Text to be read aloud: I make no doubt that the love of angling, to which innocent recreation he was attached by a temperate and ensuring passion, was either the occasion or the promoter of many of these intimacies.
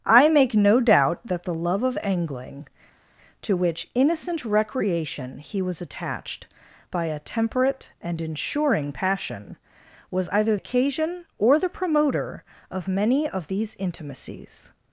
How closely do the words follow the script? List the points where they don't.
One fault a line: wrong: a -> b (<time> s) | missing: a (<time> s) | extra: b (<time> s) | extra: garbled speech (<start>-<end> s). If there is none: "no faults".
missing: the (10.6 s)